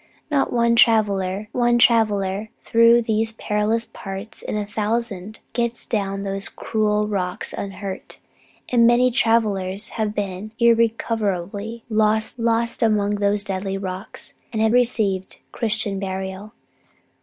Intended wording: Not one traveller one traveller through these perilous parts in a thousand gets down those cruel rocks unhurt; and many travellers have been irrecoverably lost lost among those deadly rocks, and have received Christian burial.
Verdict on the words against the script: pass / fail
pass